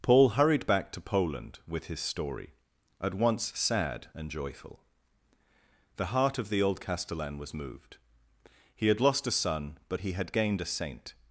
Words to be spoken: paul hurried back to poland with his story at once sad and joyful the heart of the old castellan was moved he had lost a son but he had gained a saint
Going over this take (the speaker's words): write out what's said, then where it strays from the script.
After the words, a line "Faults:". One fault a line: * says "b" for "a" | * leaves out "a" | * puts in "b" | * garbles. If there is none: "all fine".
paul hurried back to poland with his story at once sad and joyful the heart of the old castellan was moved he had lost a son but he had gained a saint
Faults:
all fine